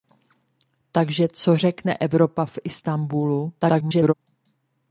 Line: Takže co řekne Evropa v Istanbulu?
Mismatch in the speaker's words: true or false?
true